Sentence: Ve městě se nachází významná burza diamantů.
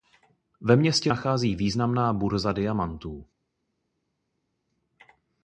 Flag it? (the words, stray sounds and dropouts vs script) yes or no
yes